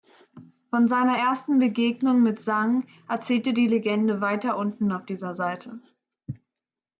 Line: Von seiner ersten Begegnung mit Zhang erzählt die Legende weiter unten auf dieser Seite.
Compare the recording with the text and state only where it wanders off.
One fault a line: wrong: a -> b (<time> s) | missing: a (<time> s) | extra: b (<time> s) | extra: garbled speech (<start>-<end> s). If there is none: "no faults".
no faults